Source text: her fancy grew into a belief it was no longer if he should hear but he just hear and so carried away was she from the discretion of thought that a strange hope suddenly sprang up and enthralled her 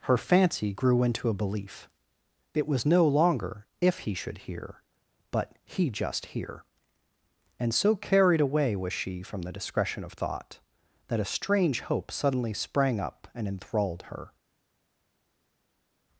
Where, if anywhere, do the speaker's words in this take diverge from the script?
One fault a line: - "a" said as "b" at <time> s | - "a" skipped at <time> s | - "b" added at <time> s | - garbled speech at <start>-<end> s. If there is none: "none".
none